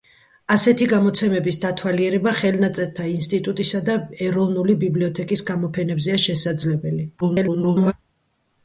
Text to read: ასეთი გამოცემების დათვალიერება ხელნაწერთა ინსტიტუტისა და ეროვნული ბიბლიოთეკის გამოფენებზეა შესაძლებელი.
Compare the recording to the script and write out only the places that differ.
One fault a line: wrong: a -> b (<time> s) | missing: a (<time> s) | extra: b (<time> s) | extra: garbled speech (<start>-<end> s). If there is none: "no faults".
extra: garbled speech (7.2-7.9 s)